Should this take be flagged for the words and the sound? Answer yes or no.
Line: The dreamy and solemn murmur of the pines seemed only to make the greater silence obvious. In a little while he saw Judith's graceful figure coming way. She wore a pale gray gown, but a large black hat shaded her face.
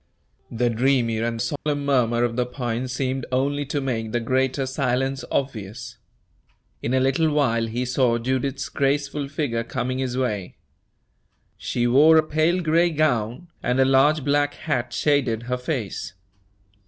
yes